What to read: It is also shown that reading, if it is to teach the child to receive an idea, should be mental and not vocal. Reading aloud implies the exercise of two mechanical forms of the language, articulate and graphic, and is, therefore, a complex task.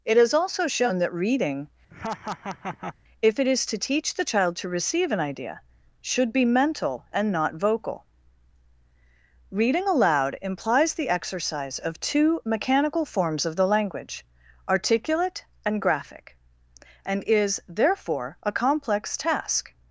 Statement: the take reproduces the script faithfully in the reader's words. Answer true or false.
true